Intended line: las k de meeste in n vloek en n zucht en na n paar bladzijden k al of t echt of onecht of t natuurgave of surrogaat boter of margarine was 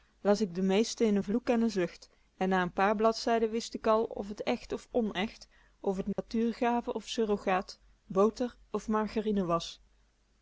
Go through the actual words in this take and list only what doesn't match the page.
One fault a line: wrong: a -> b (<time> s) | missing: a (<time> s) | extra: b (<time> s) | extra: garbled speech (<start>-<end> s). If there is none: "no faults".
extra: wist (3.6 s)